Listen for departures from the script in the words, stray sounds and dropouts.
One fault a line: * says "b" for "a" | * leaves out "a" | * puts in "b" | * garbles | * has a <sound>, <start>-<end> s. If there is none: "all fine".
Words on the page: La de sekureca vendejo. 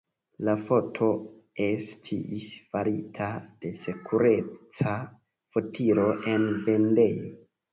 * puts in "foto estis farita"
* puts in "fotilo en"